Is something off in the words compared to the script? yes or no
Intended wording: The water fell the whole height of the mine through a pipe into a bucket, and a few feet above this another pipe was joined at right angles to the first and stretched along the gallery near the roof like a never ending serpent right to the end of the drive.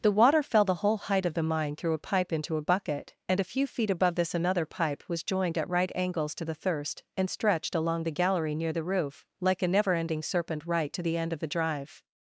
yes